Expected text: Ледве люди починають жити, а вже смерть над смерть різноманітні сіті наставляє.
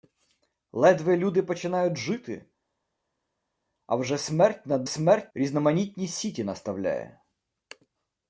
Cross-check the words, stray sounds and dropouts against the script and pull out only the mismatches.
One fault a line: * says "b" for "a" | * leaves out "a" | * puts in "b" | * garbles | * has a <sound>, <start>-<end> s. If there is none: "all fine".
all fine